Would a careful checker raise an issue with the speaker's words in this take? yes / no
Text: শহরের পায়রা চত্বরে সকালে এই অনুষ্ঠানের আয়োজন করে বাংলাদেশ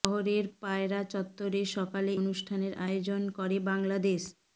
yes